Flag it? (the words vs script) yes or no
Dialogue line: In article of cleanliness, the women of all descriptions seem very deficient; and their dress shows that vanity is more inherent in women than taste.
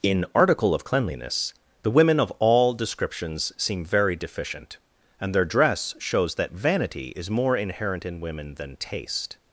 no